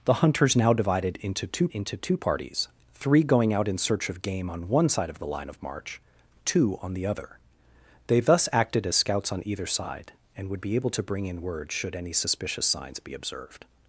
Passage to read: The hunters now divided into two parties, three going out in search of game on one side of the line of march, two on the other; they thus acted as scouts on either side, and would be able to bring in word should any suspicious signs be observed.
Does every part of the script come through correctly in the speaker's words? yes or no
no